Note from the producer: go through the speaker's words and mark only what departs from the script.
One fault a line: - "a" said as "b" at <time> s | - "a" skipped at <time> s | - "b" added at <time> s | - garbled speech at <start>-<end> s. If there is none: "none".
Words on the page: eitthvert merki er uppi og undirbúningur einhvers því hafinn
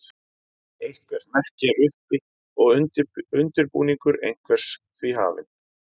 none